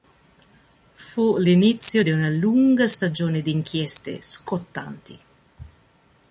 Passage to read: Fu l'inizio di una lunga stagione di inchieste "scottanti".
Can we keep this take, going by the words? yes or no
yes